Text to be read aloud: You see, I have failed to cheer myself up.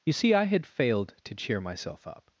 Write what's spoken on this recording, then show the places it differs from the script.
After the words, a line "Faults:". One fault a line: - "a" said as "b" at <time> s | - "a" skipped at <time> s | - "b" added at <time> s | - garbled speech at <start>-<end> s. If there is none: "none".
You see, I had failed to cheer myself up.
Faults:
- "have" said as "had" at 0.5 s